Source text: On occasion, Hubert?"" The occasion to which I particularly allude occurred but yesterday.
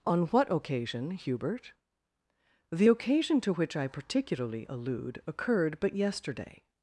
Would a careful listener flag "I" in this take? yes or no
no